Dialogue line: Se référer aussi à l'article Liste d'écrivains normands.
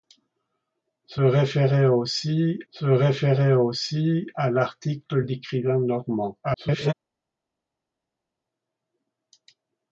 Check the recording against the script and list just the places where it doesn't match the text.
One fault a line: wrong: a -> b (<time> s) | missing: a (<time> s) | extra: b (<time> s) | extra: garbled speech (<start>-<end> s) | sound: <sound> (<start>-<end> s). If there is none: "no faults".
extra: se référer aussi (2.7 s)
missing: Liste (5.2 s)
extra: garbled speech (6.4-6.9 s)